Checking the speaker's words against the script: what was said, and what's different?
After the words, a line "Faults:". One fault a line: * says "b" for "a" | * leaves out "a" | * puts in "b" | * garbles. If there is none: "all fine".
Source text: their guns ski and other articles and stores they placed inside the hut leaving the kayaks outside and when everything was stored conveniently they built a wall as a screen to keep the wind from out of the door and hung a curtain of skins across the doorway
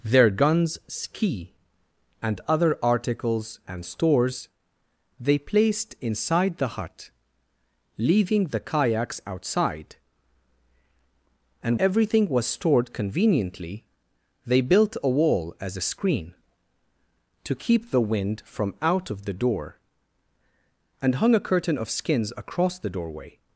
their guns ski and other articles and stores they placed inside the hut leaving the kayaks outside and everything was stored conveniently they built a wall as a screen to keep the wind from out of the door and hung a curtain of skins across the doorway
Faults:
* leaves out "when"